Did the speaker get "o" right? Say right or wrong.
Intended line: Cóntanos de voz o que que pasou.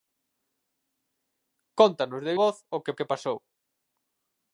right